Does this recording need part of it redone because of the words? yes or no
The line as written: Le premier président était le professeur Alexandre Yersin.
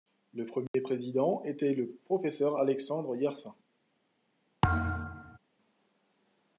no